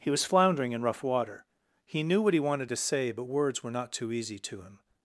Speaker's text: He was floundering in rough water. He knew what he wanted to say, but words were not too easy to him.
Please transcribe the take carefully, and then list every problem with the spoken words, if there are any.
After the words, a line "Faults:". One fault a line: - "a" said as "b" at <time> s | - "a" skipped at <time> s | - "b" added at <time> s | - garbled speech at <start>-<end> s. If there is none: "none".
He was floundering in rough water. He knew what he wanted to say, but words were not too easy to him.
Faults:
none